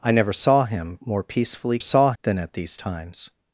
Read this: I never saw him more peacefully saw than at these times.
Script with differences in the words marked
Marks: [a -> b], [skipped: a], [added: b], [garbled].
I never saw him more peacefully saw than at these times.